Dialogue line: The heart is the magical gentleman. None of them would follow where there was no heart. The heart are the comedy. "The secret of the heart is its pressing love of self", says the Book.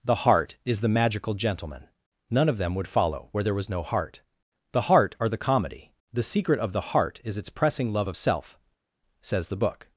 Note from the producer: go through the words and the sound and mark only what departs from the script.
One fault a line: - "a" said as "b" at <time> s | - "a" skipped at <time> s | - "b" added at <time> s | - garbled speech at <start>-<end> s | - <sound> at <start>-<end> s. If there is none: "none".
none